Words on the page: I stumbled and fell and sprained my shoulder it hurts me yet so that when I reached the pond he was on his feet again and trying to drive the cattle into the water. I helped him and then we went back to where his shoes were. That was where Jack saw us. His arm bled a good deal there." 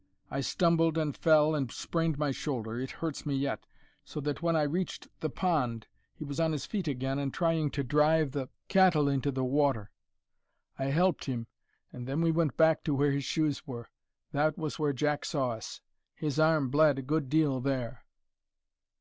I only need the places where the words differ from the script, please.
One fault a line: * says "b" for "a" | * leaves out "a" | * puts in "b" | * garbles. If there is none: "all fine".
all fine